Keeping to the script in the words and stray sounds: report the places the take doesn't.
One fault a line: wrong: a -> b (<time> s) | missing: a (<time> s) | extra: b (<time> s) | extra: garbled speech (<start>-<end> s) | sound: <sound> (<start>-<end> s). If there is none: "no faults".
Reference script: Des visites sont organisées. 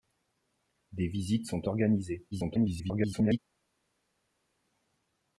extra: garbled speech (2.3-3.4 s)